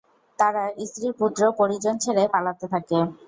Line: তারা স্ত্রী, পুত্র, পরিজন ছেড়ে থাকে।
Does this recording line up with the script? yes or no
no